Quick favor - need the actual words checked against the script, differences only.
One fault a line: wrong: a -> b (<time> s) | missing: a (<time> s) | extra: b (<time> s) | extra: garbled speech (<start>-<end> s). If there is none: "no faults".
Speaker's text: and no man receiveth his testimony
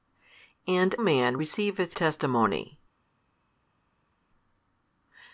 missing: no (0.9 s)
missing: his (1.9 s)